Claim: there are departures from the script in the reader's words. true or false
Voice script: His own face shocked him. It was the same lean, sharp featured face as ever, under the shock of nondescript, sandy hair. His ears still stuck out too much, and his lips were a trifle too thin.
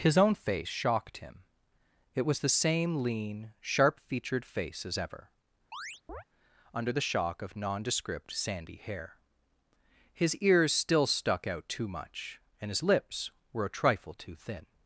false